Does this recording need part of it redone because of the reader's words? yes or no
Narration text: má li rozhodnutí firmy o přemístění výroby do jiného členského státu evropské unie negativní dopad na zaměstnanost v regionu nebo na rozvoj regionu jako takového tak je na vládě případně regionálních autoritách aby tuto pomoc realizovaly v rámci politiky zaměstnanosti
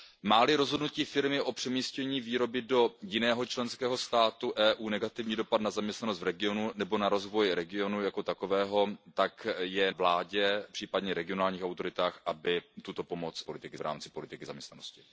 yes